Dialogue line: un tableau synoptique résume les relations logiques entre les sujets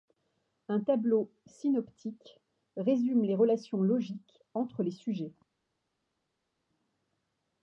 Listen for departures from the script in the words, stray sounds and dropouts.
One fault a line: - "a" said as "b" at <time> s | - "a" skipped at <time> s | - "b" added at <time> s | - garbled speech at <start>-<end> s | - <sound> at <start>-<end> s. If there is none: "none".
none